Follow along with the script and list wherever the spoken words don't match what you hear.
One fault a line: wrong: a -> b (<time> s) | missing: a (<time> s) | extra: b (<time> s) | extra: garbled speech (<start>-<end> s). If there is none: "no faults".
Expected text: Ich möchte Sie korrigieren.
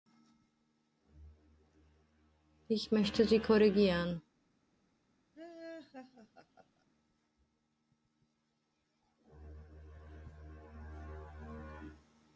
no faults